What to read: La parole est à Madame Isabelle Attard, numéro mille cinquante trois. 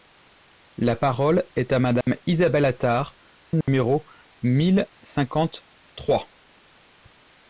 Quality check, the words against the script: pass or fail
pass